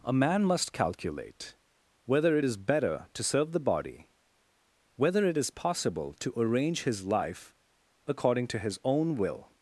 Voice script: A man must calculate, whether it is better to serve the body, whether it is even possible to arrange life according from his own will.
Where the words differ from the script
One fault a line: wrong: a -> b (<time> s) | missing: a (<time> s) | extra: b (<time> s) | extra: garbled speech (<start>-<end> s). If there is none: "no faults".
missing: even (5.5 s)
extra: his (6.8 s)
wrong: from -> to (8.5 s)